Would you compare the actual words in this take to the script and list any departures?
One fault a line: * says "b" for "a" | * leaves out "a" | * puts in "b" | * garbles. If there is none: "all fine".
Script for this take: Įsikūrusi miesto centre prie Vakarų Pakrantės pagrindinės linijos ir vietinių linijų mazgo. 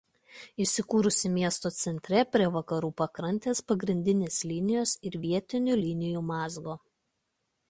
all fine